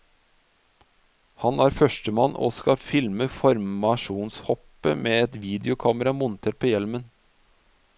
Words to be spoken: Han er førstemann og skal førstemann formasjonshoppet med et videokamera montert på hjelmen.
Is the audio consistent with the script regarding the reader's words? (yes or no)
no